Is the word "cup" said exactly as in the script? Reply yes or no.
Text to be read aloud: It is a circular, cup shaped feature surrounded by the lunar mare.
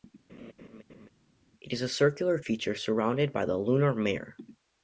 no